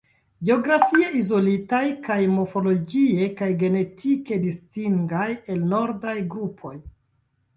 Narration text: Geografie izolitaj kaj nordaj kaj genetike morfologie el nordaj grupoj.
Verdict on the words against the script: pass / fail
fail